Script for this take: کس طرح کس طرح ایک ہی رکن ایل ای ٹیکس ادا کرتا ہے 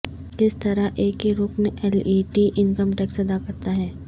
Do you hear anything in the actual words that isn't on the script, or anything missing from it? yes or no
yes